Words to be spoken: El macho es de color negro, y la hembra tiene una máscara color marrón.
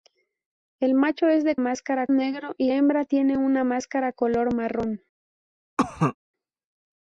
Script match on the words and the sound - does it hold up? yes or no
no